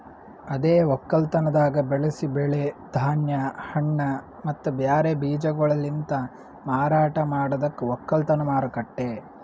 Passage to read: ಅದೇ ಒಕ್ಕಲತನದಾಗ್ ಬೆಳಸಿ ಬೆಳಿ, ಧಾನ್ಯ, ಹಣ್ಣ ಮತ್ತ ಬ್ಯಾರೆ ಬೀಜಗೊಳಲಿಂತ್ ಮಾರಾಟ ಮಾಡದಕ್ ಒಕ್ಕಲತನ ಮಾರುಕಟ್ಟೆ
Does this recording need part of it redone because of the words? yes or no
no